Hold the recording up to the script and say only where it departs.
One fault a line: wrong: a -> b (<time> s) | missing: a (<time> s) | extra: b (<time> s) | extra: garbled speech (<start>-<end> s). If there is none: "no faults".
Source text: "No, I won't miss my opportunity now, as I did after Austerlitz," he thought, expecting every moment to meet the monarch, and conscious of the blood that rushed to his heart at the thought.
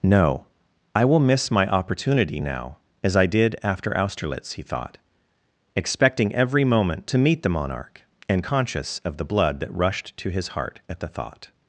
wrong: won't -> will (1.1 s)